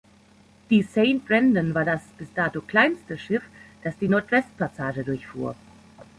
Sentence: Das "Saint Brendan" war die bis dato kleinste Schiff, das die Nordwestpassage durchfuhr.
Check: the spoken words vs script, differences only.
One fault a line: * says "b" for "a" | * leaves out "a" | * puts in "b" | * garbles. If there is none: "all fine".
* says "Die" for "Das"
* says "das" for "die"